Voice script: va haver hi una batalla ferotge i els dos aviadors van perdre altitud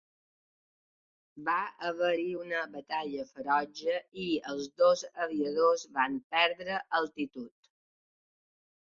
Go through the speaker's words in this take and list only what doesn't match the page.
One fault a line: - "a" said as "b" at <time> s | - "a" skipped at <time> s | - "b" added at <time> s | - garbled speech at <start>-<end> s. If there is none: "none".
none